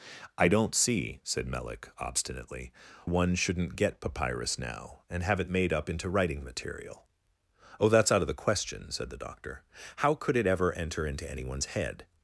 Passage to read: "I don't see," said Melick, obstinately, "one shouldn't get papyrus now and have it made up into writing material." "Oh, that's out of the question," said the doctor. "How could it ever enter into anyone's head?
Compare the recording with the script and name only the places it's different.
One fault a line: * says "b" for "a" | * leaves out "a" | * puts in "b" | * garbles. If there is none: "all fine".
all fine